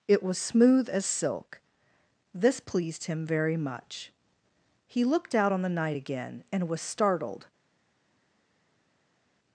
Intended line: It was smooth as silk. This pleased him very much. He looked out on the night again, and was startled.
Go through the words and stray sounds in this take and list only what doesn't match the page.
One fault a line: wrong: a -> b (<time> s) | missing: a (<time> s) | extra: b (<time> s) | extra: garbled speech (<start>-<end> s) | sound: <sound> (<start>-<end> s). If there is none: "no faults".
no faults